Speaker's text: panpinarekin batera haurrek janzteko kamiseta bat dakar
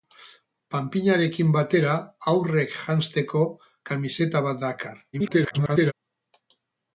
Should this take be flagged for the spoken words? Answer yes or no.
yes